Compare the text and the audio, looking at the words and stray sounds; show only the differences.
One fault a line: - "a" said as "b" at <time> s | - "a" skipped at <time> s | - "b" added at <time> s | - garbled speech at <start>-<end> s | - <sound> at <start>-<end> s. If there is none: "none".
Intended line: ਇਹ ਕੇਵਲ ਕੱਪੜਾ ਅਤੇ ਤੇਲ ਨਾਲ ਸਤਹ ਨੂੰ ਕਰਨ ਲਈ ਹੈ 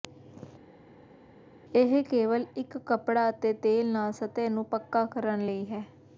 - "ਇੱਕ" added at 2.6 s
- "ਪੱਕਾ" added at 4.7 s